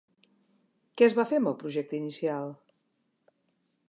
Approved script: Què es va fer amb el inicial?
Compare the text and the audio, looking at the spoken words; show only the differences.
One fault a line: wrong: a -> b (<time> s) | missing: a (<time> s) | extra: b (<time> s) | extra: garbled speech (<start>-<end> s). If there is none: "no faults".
extra: projecte (1.6 s)